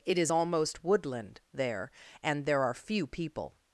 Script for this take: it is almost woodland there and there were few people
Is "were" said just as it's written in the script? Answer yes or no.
no